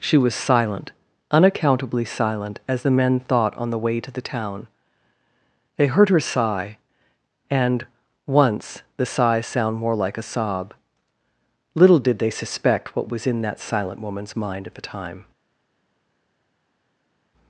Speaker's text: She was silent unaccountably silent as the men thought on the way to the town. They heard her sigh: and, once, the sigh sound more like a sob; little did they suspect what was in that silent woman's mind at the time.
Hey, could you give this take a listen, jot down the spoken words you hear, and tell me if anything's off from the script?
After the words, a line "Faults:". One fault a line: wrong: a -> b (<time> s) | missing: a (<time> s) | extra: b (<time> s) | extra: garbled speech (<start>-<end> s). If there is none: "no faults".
She was silent unaccountably silent as the men thought on the way to the town. They heard her sigh: and, once, the sigh sound more like a sob; little did they suspect what was in that silent woman's mind at the time.
Faults:
no faults